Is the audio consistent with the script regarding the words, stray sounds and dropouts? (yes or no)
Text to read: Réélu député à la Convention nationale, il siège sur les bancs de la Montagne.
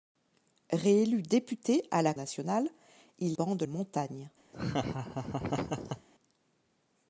no